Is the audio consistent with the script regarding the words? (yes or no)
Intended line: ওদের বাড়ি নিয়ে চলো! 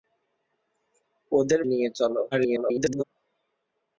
no